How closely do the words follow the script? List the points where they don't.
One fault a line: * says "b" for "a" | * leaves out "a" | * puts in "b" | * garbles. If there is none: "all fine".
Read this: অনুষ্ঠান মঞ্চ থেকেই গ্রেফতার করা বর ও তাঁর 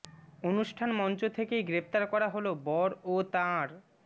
* puts in "হল"